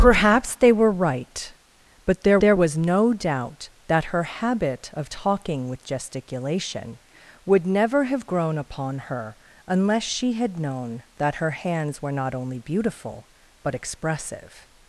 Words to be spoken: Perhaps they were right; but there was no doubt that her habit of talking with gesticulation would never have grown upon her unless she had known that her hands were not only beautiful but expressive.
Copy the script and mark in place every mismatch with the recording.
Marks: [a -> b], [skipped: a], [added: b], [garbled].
Perhaps they were right; but there [added: there] was no doubt that her habit of talking with gesticulation would never have grown upon her unless she had known that her hands were not only beautiful but expressive.